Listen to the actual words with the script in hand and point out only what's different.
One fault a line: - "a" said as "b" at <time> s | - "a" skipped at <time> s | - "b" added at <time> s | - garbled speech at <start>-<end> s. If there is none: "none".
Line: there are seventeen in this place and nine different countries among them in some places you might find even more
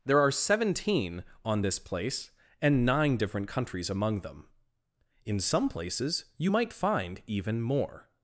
- "in" said as "on" at 1.4 s